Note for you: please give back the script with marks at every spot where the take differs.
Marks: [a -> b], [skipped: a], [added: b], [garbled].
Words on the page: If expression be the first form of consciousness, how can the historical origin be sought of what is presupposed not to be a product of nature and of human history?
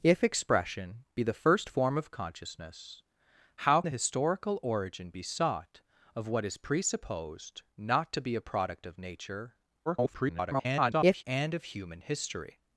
If expression be the first form of consciousness, how [skipped: can] the historical origin be sought of what is presupposed not to be a product of nature [garbled] and of human history?